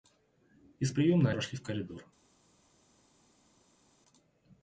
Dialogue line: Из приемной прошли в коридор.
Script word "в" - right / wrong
right